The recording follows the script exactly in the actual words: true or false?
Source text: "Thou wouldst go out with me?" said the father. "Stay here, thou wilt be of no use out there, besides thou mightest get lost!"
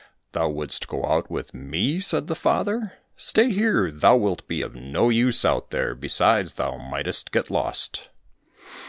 true